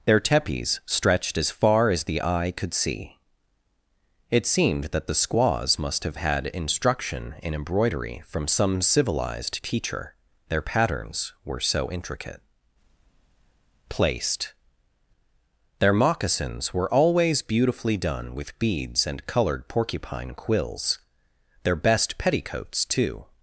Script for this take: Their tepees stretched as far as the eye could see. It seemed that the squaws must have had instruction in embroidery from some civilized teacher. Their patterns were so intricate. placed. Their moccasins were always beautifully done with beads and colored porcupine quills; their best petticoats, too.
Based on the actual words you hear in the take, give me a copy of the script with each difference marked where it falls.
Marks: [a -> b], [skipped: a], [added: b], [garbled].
Their tepees stretched as far as the eye could see. It seemed that the squaws must have had instruction in embroidery from some civilized teacher. Their patterns were so intricate. placed. Their moccasins were always beautifully done with beads and colored porcupine quills; their best petticoats, too.